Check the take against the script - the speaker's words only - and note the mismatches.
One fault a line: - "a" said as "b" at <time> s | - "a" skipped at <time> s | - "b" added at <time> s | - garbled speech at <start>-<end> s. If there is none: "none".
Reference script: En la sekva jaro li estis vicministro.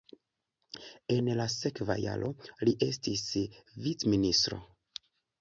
none